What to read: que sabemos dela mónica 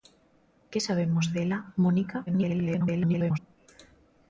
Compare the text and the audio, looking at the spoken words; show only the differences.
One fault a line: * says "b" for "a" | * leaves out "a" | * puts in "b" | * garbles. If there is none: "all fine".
* garbles